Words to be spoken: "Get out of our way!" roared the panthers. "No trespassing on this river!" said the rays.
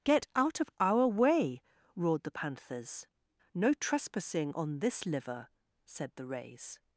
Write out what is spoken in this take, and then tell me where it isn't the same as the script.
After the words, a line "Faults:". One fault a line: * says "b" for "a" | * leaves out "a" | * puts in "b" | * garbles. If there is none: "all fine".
"Get out of our way!" roared the panthers. "No trespassing on this liver!" said the rays.
Faults:
* says "liver" for "river"